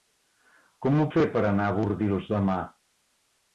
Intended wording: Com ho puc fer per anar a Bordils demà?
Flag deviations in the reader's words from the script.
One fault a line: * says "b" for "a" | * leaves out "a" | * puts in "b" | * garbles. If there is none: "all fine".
* leaves out "puc"